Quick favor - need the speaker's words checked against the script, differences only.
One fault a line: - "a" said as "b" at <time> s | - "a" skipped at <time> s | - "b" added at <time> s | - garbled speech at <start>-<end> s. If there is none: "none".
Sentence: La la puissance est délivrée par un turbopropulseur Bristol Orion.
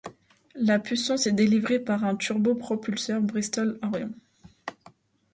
- "la" skipped at 0.8 s